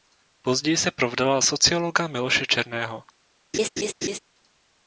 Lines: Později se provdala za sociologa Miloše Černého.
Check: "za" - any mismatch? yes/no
yes